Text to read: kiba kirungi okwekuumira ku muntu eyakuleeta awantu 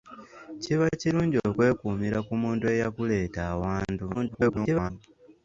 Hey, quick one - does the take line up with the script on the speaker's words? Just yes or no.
no